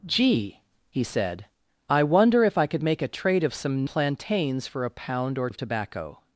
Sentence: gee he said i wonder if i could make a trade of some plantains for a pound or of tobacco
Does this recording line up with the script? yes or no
yes